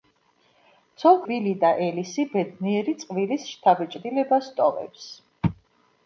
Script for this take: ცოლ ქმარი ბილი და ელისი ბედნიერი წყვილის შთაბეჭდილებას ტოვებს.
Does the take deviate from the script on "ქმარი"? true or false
true